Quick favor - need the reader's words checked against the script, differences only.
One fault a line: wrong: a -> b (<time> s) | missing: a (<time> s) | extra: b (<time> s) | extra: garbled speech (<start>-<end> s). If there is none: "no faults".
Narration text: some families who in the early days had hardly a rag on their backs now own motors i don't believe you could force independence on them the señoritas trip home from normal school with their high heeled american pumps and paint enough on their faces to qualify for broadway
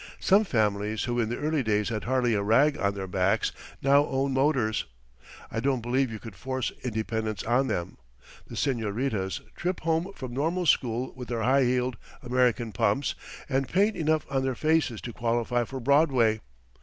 no faults